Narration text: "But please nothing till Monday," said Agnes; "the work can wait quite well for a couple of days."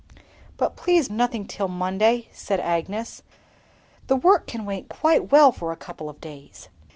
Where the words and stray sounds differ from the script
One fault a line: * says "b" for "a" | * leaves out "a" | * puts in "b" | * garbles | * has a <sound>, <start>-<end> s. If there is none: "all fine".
all fine